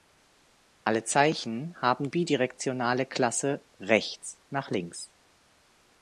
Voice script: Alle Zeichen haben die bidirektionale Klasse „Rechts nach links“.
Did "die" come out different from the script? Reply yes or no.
yes